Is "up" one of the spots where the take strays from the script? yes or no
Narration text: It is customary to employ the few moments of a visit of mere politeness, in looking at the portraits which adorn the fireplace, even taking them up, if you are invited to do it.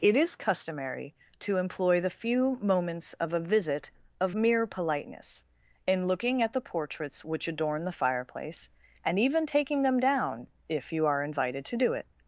yes